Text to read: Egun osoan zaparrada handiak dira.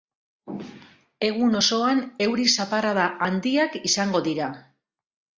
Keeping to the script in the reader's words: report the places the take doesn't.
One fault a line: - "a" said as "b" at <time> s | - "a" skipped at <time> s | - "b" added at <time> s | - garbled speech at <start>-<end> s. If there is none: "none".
- "euri" added at 2.3 s
- "izango" added at 3.9 s